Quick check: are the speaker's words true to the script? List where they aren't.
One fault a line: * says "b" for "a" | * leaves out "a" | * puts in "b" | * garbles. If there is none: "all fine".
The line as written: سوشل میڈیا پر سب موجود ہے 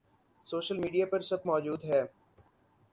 all fine